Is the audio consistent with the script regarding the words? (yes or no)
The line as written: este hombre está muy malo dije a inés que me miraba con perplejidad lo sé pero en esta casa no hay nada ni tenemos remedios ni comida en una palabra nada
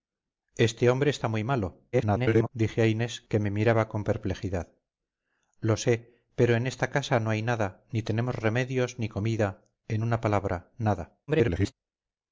no